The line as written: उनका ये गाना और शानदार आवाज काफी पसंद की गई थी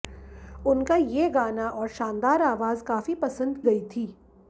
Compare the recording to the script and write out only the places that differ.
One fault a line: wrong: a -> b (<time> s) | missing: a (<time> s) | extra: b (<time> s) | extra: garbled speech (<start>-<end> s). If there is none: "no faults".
missing: की (3.6 s)